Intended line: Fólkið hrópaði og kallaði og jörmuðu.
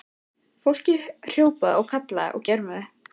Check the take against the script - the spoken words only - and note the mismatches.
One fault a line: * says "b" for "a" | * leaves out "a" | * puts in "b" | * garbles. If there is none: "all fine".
all fine